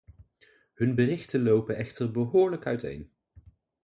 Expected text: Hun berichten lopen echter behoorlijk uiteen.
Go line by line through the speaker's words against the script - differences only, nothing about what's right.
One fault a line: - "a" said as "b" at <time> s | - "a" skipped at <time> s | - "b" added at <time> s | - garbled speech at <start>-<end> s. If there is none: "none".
none